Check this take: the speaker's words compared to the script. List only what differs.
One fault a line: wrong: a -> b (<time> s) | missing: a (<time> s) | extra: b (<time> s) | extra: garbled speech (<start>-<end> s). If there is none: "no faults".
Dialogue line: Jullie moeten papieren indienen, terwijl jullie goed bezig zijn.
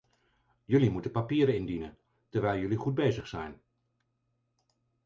no faults